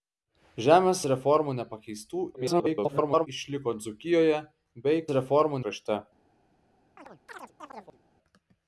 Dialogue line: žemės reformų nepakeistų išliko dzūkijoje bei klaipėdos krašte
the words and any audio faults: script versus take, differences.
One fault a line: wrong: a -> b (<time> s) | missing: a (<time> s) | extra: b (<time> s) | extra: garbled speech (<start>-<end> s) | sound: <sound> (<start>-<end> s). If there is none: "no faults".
extra: garbled speech (2.3-3.3 s)
wrong: klaipėdos -> reformų (5.2 s)
sound: chirp (7.0-8.0 s)